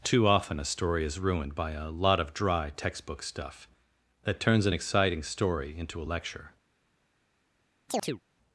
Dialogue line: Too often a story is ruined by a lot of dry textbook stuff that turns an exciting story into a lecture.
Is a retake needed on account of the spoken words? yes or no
no